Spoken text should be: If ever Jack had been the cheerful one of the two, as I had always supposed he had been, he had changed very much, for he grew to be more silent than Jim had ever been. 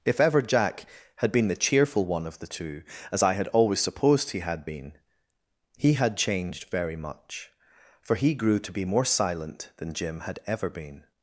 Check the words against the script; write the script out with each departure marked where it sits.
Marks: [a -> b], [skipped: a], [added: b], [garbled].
If ever Jack had been the cheerful one of the two, as I had always supposed he had been, he had changed very much, for he grew to be more silent than Jim had ever been.